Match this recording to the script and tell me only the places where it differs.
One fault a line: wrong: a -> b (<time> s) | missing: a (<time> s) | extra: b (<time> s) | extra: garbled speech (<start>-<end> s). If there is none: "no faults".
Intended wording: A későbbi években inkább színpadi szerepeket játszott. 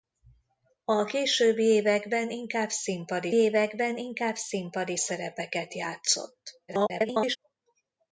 extra: években inkább színpadi (3.3 s)
extra: garbled speech (6.7-7.4 s)